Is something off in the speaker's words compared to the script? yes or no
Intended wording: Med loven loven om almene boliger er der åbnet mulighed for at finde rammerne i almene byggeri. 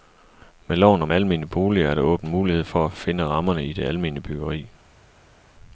yes